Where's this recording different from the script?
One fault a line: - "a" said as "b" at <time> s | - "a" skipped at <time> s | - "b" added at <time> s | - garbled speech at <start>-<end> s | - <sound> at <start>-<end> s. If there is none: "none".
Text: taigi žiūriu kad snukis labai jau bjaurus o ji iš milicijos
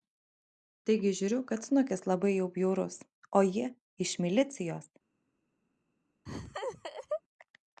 - laugh at 6.3-7.2 s